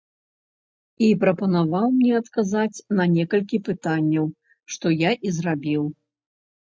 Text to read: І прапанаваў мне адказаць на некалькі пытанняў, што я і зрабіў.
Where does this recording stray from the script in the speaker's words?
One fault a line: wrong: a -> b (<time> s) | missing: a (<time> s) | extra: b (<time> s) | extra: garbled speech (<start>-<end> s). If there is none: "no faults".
no faults